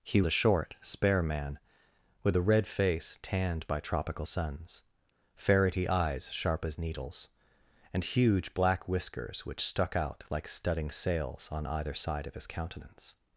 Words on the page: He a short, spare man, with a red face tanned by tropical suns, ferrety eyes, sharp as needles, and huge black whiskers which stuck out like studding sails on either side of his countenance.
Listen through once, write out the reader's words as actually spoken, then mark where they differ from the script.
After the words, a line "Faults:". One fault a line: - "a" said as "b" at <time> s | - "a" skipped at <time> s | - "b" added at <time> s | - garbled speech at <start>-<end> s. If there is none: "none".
He a short, spare man, with a red face tanned by tropical suns, ferrety eyes, sharp as needles, and huge black whiskers which stuck out like studding sails on either side of his countenance.
Faults:
none